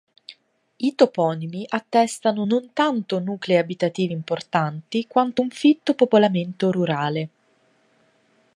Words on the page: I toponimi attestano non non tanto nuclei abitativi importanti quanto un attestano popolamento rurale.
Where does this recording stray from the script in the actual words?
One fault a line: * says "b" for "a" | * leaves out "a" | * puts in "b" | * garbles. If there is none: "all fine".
* leaves out "non"
* says "fitto" for "attestano"